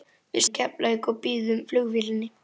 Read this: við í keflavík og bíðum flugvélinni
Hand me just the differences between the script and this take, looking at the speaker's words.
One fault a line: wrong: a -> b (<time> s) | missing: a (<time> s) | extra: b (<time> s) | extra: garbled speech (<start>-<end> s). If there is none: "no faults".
no faults